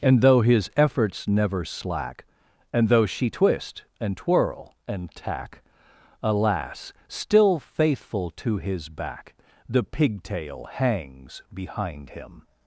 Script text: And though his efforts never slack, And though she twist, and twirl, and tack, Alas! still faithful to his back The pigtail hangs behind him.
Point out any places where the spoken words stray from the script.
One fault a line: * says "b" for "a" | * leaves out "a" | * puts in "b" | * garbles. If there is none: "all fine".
all fine